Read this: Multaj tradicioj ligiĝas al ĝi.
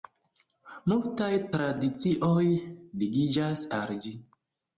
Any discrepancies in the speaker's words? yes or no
no